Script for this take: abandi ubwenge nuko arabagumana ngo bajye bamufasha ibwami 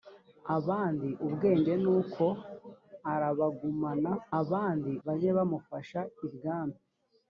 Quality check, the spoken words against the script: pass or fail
fail